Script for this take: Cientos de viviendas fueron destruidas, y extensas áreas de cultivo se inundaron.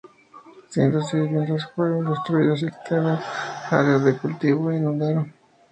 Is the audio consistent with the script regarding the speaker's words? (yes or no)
yes